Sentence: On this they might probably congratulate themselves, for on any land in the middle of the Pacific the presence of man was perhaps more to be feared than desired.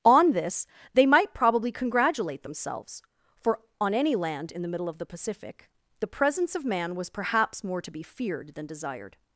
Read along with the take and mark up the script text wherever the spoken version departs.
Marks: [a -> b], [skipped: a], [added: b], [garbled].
On this they might probably congratulate themselves, for on any land in the middle of the Pacific the presence of man was perhaps more to be feared than desired.